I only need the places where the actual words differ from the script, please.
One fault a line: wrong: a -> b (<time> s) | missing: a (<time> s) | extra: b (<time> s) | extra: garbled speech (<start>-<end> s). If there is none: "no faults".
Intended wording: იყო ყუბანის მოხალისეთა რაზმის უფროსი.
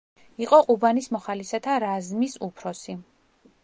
no faults